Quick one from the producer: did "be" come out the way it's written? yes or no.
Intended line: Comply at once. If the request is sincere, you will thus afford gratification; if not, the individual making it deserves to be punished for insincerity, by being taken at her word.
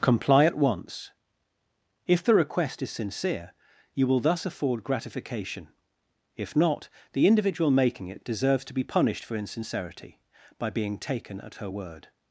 yes